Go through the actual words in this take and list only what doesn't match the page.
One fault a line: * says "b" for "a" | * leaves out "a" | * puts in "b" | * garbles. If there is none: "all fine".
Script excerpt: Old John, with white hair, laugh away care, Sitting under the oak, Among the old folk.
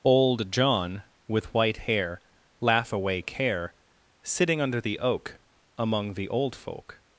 all fine